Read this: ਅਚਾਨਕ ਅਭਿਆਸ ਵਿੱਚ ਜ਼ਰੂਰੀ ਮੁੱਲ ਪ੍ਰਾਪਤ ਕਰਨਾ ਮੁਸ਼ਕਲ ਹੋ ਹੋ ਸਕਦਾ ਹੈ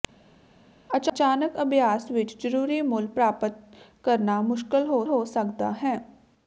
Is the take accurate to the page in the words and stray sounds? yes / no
yes